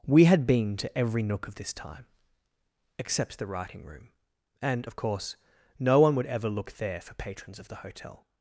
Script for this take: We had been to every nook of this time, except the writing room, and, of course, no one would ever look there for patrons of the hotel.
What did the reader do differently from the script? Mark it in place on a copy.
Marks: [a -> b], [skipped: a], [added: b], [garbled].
We had been to every nook of this time, except the writing room, and, of course, no one would ever look there for patrons of the hotel.